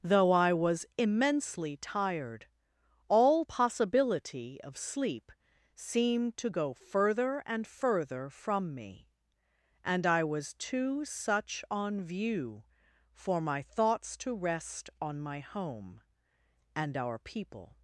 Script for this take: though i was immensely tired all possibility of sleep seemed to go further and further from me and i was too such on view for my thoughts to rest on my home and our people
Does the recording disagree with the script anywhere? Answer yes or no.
no